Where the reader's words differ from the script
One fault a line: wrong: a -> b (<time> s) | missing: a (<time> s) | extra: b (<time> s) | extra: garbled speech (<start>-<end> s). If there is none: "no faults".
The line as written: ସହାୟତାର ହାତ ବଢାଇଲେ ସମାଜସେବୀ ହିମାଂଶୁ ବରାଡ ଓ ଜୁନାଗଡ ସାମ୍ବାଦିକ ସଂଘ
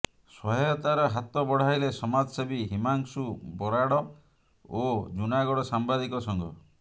no faults